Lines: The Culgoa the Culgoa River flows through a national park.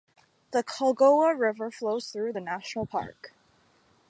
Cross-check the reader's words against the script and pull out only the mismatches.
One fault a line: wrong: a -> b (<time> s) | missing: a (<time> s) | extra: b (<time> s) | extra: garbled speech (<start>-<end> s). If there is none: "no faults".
missing: the Culgoa (1.4 s)
wrong: a -> the (2.3 s)